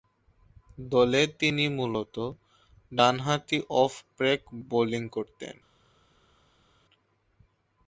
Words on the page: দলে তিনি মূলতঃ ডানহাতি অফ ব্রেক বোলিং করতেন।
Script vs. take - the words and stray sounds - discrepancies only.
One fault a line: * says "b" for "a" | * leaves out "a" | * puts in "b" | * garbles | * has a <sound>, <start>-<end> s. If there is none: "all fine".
all fine